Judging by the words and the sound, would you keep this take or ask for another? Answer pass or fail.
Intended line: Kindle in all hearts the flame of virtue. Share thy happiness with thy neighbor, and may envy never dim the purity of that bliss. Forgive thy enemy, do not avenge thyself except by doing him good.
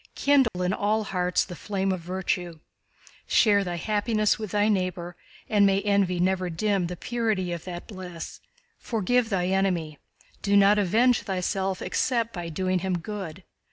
fail